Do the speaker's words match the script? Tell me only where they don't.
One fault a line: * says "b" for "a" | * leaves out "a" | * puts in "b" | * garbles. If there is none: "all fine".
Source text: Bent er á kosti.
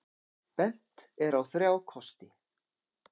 * puts in "þrjá"